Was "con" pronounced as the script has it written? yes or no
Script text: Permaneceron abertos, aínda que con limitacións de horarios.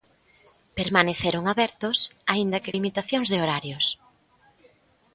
no